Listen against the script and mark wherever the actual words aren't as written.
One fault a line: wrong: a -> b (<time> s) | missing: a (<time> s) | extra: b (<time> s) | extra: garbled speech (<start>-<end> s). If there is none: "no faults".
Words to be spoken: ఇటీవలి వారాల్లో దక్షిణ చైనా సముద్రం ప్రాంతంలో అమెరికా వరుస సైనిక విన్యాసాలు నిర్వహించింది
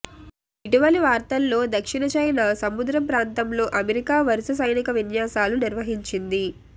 no faults